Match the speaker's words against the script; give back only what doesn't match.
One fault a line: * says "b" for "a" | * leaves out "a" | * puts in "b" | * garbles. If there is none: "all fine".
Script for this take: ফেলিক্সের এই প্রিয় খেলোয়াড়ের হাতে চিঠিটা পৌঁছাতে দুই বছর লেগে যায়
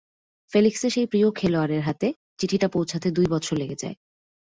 * says "সেই" for "এই"